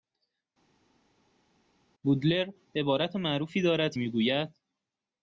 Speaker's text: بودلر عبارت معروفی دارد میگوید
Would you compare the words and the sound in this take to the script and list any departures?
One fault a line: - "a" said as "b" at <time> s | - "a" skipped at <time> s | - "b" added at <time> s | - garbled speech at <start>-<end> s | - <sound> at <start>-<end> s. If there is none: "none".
none